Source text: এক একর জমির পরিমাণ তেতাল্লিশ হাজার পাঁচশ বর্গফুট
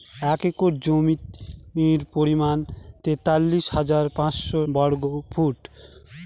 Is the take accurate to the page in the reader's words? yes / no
yes